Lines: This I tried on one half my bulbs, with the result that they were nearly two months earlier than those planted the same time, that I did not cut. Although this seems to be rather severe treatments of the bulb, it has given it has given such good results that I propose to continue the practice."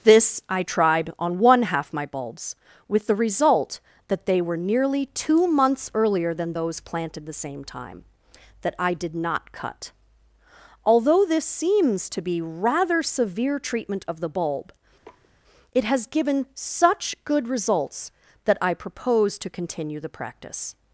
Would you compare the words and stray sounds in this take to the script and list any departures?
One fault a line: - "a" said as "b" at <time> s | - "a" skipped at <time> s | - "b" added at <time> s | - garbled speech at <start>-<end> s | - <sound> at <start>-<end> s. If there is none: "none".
- "treatments" said as "treatment" at 13.6 s
- sniff at 15.0-15.3 s
- "it has given" skipped at 16.4 s